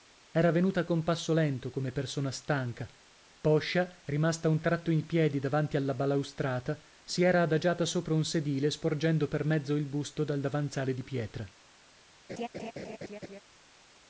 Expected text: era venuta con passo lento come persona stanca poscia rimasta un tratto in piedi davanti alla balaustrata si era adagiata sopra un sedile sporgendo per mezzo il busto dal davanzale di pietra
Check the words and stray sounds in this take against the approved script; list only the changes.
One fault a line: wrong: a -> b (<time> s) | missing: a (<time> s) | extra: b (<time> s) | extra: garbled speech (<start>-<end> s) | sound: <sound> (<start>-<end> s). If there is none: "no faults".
sound: laugh (12.3-13.4 s)